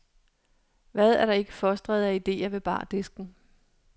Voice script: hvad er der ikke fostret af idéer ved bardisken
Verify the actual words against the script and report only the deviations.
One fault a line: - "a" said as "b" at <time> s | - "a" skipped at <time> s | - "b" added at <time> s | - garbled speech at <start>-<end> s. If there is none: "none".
none